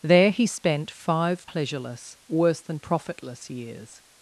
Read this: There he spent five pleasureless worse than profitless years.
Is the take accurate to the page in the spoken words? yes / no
yes